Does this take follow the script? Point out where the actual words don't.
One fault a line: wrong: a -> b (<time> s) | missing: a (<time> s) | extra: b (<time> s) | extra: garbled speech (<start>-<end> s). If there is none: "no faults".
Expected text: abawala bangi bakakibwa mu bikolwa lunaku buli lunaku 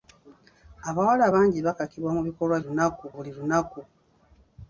no faults